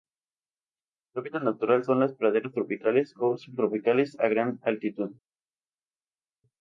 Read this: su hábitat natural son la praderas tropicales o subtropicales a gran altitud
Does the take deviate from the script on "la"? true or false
true